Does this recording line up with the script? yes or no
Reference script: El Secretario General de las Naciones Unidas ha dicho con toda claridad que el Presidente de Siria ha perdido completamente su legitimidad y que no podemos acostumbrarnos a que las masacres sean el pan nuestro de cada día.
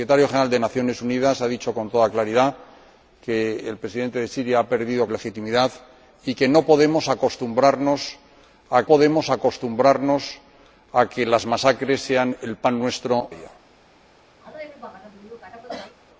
no